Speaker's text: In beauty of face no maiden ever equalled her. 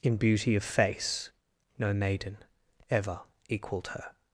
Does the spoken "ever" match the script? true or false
true